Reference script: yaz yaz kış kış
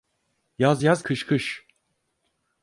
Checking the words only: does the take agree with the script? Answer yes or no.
yes